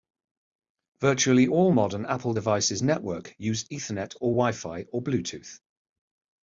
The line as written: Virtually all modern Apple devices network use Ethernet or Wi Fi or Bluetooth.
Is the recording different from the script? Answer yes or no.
no